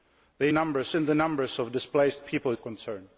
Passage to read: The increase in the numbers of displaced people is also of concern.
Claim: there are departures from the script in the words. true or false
true